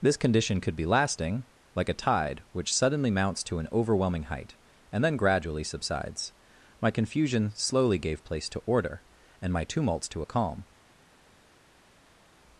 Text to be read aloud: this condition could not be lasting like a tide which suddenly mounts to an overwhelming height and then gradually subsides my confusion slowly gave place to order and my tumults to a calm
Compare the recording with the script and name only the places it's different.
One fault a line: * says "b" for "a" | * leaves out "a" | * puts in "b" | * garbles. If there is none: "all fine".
* leaves out "not"